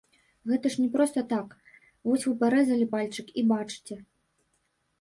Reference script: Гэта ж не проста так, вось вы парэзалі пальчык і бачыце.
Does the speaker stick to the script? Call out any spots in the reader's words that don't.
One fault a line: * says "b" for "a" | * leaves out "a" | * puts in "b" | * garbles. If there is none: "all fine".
all fine